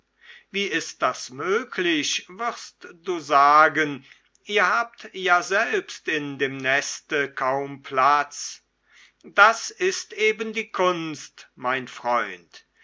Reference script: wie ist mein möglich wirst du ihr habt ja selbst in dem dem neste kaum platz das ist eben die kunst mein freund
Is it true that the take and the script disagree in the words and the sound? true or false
true